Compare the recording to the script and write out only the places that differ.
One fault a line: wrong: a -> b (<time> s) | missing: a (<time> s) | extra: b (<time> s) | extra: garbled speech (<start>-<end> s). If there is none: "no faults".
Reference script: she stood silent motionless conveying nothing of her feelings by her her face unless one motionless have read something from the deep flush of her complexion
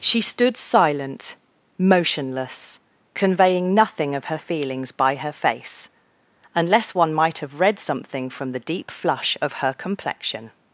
missing: her (5.3 s)
wrong: motionless -> might (7.1 s)